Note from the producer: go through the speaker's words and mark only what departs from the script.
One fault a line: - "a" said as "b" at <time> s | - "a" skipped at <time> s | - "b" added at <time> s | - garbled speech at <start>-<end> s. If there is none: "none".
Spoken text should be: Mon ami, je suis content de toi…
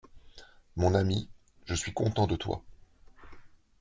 none